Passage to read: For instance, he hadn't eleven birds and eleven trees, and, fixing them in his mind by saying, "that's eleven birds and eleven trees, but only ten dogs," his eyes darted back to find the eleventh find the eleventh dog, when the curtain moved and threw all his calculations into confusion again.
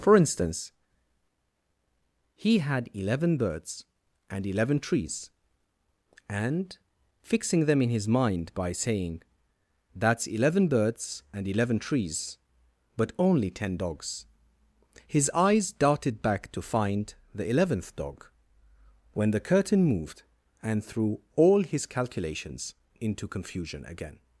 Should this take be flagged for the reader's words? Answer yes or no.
yes